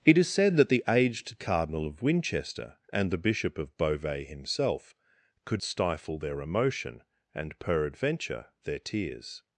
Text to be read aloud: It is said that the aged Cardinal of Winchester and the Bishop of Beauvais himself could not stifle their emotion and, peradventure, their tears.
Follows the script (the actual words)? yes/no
no